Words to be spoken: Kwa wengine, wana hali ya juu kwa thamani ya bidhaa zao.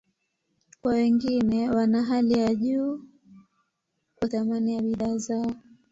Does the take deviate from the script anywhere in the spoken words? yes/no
no